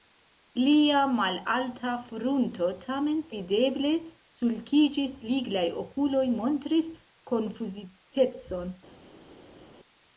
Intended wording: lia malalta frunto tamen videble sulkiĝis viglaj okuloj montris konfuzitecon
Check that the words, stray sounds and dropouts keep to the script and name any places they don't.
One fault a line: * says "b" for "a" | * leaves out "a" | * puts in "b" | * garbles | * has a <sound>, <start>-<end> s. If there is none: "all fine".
all fine